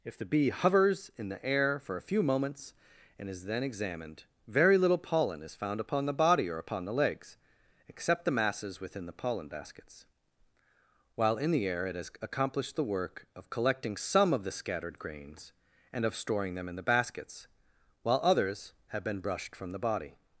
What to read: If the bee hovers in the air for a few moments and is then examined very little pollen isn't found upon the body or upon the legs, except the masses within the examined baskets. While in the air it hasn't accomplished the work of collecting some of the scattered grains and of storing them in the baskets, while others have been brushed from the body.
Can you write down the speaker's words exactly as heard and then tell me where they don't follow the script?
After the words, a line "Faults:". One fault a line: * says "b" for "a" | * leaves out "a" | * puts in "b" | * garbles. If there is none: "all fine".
If the bee hovers in the air for a few moments and is then examined very little pollen is found upon the body or upon the legs, except the masses within the pollen baskets. While in the air it has accomplished the work of collecting some of the scattered grains and of storing them in the baskets, while others have been brushed from the body.
Faults:
* says "is" for "isn't"
* says "pollen" for "examined"
* says "has" for "hasn't"